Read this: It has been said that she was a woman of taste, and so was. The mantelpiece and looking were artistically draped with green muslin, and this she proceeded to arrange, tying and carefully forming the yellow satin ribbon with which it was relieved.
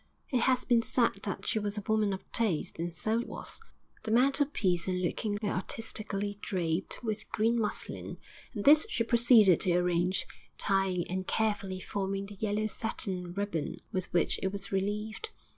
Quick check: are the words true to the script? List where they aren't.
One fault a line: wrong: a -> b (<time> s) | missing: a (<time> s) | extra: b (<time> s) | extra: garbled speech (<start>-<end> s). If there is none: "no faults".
no faults